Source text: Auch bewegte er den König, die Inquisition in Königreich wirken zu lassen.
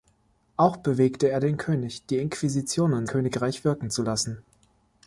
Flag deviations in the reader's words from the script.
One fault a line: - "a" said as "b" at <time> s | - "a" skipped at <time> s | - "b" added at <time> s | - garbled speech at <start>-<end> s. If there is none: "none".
none